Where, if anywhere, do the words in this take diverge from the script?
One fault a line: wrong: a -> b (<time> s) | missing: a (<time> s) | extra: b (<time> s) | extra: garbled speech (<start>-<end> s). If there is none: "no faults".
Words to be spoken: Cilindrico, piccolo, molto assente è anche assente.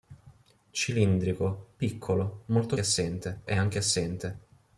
no faults